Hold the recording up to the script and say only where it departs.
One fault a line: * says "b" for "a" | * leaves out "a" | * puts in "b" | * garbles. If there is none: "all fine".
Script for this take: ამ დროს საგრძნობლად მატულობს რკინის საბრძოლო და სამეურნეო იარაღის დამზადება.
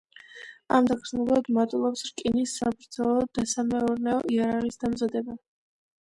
* leaves out "დროს"